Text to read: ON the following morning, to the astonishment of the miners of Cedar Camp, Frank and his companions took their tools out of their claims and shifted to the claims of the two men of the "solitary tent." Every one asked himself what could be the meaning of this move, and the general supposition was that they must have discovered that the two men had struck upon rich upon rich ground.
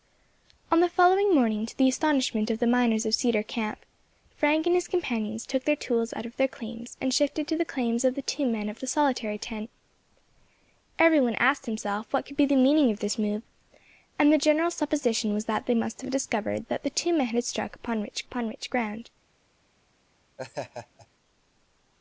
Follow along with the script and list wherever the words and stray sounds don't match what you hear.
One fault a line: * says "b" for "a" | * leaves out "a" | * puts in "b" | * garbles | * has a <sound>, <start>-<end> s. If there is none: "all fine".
* has a laugh, 20.4-21.1 s